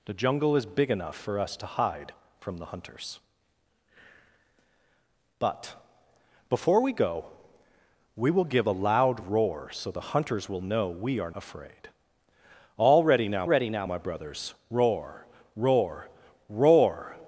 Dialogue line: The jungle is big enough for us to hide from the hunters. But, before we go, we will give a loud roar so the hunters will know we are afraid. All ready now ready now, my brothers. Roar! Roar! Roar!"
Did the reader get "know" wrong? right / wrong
right